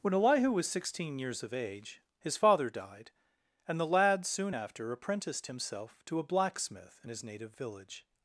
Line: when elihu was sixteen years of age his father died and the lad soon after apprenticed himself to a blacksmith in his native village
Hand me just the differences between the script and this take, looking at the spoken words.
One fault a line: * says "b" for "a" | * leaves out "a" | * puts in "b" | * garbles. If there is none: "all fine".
all fine